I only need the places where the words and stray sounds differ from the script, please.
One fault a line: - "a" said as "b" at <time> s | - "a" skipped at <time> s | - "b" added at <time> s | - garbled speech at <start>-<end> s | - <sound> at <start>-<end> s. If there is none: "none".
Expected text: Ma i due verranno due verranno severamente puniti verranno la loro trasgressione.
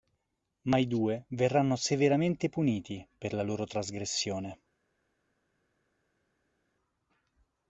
- "due verranno" skipped at 1.7 s
- "verranno" said as "per" at 3.2 s